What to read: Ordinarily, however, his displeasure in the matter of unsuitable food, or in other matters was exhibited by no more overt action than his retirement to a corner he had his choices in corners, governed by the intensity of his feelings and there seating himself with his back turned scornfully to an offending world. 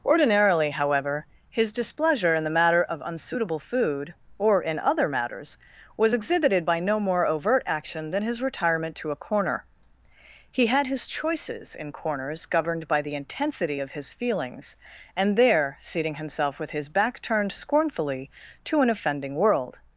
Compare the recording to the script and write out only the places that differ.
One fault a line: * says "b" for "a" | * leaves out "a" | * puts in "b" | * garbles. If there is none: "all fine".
all fine